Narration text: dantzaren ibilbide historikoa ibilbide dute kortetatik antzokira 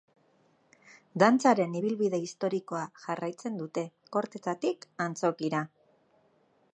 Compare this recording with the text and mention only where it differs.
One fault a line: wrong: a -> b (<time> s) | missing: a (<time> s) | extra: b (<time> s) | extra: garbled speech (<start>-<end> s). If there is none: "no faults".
wrong: ibilbide -> jarraitzen (3.1 s)